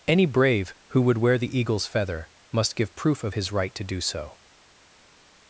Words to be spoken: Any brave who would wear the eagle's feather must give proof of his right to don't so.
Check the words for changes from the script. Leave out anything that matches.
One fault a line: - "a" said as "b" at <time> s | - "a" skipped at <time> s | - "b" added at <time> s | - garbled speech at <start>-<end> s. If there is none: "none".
- "don't" said as "do" at 3.8 s